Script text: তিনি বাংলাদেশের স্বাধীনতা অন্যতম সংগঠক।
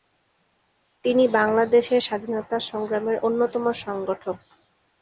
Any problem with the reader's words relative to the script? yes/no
yes